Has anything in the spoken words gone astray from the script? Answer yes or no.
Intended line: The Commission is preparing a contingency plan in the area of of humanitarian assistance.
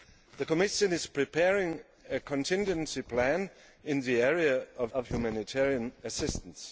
no